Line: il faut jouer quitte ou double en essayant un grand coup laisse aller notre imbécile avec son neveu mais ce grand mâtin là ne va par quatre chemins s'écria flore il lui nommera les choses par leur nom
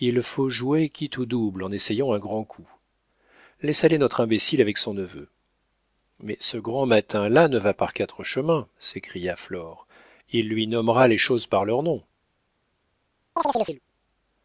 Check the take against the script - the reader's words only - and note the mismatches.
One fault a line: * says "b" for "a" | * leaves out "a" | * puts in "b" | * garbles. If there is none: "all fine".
all fine